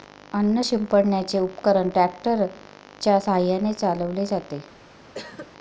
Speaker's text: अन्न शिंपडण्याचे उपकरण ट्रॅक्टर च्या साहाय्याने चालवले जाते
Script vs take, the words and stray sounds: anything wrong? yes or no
yes